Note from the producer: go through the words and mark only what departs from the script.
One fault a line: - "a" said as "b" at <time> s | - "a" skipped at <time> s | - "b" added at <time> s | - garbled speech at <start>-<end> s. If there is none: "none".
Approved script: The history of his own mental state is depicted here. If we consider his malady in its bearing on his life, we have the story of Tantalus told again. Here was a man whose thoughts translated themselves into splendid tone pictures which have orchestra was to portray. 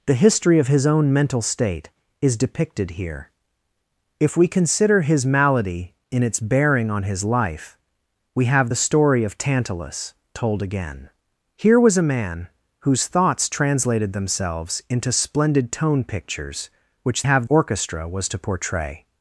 none